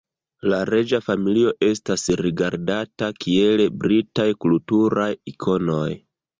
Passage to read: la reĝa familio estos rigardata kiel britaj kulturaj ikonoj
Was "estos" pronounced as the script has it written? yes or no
no